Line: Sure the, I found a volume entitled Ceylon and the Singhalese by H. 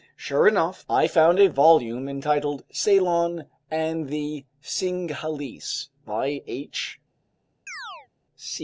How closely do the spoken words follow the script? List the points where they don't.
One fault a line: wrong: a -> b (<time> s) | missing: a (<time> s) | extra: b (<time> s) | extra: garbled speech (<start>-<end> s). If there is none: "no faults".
wrong: the -> enough (0.5 s)